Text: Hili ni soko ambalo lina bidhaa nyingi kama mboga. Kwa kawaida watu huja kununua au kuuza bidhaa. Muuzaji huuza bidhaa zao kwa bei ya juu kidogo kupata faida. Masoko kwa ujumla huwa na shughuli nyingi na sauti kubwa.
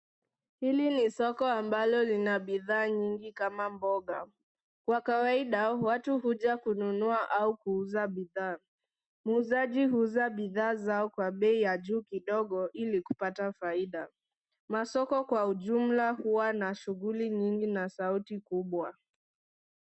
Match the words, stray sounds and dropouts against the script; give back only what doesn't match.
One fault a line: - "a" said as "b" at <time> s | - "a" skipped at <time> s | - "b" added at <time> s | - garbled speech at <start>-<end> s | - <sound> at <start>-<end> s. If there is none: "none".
- "ili" added at 12.7 s